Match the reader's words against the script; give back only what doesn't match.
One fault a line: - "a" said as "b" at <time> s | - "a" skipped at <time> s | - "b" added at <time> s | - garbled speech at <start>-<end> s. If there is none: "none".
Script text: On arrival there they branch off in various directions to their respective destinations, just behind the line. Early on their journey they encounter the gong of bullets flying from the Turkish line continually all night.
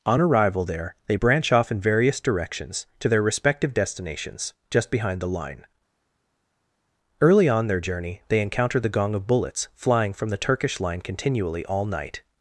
none